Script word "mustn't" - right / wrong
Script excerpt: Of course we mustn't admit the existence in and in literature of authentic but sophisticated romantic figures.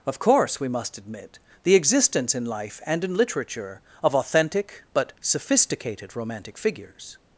wrong